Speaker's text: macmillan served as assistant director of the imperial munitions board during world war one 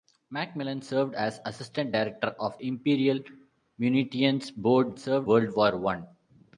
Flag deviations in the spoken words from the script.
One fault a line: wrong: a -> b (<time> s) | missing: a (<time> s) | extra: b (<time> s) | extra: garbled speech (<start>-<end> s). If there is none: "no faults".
missing: the (2.6 s)
wrong: during -> served (5.0 s)